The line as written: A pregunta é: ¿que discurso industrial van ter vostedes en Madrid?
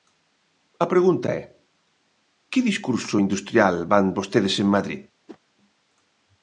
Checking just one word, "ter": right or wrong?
wrong